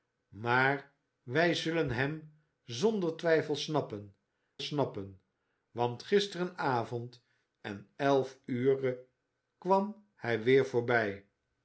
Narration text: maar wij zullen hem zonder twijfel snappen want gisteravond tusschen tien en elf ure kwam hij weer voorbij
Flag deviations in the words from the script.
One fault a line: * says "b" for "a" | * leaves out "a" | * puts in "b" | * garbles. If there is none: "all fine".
* puts in "snappen"
* leaves out "tusschen tien"